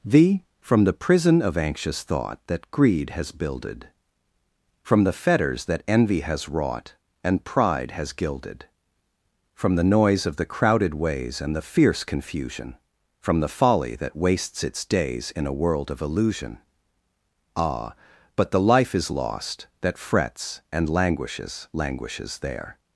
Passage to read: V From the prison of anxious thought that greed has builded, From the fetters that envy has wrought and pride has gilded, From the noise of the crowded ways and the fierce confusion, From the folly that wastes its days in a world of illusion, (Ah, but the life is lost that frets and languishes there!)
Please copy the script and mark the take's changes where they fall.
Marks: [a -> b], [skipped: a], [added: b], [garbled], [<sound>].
V From the prison of anxious thought that greed has builded, From the fetters that envy has wrought and pride has gilded, From the noise of the crowded ways and the fierce confusion, From the folly that wastes its days in a world of illusion, (Ah, but the life is lost that frets and languishes [added: languishes] there!)